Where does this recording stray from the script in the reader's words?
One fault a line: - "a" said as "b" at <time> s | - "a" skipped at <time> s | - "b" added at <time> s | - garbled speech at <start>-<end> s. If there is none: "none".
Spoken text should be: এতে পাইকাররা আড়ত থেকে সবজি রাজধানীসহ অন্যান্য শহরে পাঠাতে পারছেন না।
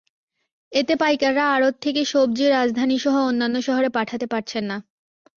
none